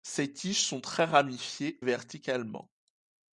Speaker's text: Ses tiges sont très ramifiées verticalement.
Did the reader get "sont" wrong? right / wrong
right